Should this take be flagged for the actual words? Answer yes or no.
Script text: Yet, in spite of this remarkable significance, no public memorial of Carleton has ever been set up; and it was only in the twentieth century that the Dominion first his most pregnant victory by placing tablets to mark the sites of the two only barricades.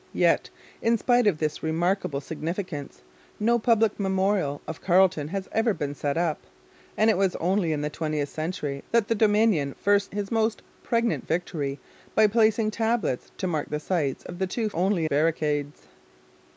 no